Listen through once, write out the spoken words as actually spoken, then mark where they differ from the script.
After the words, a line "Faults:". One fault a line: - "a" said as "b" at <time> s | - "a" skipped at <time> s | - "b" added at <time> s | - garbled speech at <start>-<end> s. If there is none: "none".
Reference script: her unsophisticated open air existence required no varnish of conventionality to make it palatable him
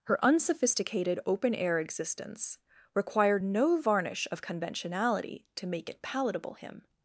her unsophisticated open air existence required no varnish of conventionality to make it palatable him
Faults:
none